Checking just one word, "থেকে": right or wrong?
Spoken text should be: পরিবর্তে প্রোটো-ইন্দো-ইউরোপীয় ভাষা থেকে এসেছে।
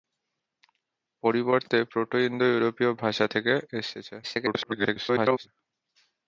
right